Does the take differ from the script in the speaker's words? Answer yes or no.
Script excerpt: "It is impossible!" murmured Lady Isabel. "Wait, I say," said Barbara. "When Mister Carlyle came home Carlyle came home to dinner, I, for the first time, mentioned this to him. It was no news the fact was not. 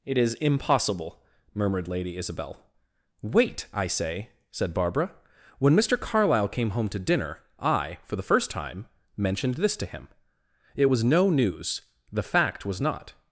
yes